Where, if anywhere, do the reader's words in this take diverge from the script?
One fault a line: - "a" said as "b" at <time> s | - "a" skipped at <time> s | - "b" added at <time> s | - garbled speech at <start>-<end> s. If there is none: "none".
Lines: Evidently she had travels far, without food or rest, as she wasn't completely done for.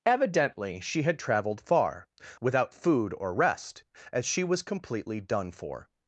- "travels" said as "traveled" at 1.2 s
- "wasn't" said as "was" at 4.4 s